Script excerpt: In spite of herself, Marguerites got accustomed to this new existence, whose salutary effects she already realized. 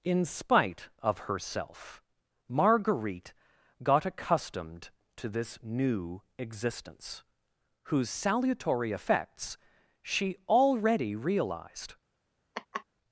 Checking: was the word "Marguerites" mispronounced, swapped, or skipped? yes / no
yes